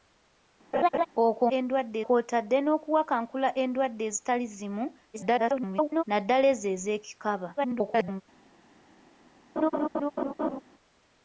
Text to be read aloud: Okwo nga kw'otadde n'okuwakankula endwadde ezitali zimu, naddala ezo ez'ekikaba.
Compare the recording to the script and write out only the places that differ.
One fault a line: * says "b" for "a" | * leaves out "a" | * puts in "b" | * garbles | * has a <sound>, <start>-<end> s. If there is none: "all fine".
* has a laugh, 0.7-1.1 s
* says "endwadde" for "nga"
* garbles
* garbles
* has a laugh, 9.6-10.6 s